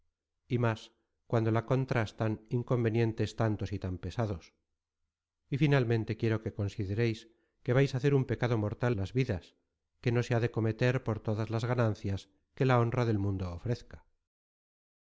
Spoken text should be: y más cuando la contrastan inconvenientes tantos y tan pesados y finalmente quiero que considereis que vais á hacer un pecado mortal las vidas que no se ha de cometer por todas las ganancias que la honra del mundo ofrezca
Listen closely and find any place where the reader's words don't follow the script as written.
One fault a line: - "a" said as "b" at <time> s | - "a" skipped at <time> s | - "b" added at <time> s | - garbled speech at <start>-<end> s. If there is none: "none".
none